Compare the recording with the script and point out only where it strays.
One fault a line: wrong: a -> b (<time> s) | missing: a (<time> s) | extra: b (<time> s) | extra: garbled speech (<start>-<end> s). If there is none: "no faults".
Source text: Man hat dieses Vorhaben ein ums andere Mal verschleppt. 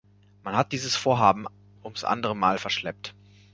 missing: ein (1.4 s)